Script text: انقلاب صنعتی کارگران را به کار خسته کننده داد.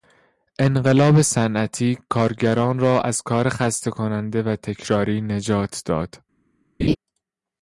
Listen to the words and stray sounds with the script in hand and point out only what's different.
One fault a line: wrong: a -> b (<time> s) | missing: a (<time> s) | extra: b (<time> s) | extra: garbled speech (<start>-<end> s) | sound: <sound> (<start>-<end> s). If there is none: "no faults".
wrong: به -> از (3.0 s)
extra: و تکراری نجات (4.4 s)
sound: laugh (6.8-7.0 s)